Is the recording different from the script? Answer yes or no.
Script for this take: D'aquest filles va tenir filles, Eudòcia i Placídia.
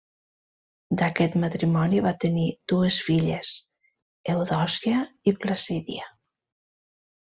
yes